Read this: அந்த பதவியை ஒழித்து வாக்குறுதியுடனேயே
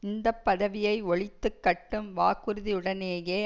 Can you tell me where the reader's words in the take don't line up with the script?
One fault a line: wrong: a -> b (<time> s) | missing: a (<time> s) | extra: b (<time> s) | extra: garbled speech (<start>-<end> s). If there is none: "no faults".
wrong: அந்த -> இந்த (0.0 s)
extra: கட்டும் (1.6 s)